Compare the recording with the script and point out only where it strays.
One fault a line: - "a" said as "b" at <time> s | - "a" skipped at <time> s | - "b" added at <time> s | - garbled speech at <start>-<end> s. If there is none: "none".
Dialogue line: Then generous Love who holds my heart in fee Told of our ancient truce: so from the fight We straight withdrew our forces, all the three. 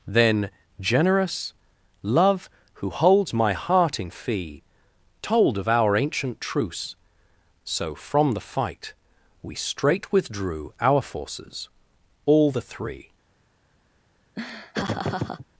none